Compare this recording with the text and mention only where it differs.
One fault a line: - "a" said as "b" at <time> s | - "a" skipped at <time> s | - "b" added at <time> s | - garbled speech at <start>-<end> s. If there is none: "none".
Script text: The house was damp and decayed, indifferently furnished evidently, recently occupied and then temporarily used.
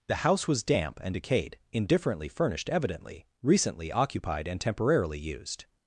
- "then" skipped at 4.6 s